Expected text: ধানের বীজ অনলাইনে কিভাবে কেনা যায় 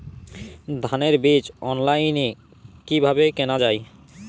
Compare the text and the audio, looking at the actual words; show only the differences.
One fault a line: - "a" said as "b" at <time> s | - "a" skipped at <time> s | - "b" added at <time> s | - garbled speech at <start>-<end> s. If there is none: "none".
none